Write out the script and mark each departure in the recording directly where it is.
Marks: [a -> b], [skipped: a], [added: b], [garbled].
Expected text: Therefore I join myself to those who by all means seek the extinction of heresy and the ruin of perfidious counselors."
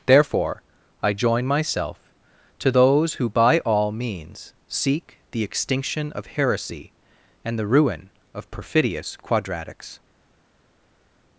Therefore I join myself to those who by all means seek the extinction of heresy and the ruin of perfidious [counselors." -> quadratics]